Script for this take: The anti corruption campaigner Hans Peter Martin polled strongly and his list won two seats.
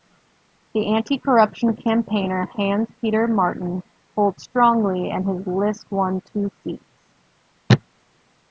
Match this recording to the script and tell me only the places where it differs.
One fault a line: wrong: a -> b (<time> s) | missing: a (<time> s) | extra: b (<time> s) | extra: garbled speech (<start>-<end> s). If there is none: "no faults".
no faults